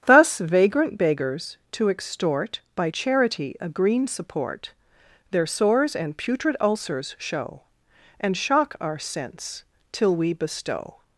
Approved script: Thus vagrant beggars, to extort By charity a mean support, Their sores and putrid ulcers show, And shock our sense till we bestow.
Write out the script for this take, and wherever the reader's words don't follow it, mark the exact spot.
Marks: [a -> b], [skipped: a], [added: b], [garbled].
Thus vagrant beggars, to extort By charity a [mean -> green] support, Their sores and putrid ulcers show, And shock our sense till we bestow.